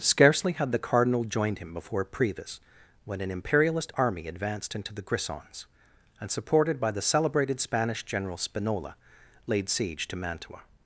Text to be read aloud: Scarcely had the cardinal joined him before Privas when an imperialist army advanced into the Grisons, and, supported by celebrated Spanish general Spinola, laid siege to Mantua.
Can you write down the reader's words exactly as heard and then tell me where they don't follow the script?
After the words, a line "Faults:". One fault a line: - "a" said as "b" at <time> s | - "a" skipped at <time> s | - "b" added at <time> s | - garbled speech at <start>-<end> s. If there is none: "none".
Scarcely had the cardinal joined him before Privas when an imperialist army advanced into the Grisons, and, supported by the celebrated Spanish general Spinola, laid siege to Mantua.
Faults:
- "the" added at 6.9 s